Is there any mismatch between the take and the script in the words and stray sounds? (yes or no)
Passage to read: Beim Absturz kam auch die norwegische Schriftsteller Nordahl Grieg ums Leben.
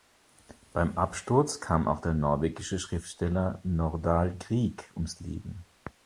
yes